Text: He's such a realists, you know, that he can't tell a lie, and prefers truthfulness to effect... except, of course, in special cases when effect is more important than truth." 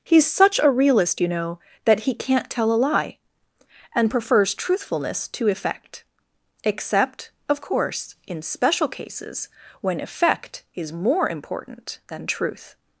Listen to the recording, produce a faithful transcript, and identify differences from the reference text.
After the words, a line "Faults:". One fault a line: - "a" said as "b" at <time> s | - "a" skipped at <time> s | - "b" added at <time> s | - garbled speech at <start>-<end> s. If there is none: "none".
He's such a realist, you know, that he can't tell a lie, and prefers truthfulness to effect... except, of course, in special cases when effect is more important than truth."
Faults:
- "realists" said as "realist" at 0.7 s